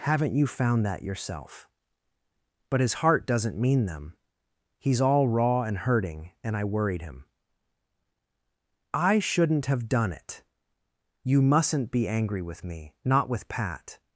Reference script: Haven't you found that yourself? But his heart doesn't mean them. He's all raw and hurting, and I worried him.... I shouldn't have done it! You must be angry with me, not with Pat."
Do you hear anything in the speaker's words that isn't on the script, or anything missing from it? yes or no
yes